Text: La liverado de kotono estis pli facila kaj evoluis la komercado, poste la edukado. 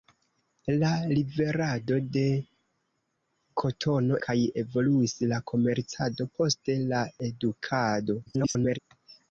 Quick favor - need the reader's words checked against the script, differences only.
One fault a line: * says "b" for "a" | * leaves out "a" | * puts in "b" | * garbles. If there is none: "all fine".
* leaves out "estis pli facila"
* garbles